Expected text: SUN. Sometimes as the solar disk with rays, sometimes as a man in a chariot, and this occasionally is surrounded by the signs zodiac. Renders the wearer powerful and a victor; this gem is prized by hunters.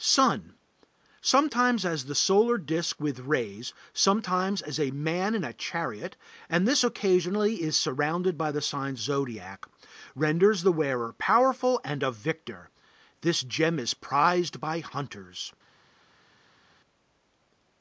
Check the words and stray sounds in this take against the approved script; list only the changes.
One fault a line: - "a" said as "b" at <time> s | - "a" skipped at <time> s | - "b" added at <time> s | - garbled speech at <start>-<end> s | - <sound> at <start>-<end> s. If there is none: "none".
none